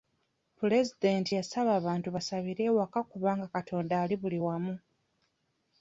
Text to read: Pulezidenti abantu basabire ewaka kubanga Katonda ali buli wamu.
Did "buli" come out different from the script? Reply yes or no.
no